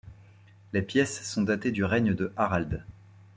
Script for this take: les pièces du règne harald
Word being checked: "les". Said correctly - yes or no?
yes